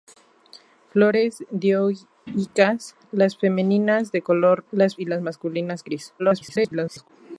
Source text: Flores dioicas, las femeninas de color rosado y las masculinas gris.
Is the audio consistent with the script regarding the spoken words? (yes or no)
no